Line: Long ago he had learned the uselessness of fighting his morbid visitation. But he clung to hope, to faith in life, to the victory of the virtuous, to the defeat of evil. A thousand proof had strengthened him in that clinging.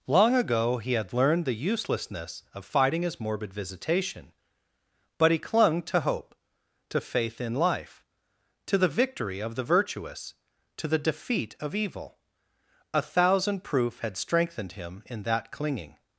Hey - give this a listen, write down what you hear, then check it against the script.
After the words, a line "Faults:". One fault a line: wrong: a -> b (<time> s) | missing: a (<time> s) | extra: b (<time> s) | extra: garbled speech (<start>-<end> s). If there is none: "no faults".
Long ago he had learned the uselessness of fighting his morbid visitation. But he clung to hope, to faith in life, to the victory of the virtuous, to the defeat of evil. A thousand proof had strengthened him in that clinging.
Faults:
no faults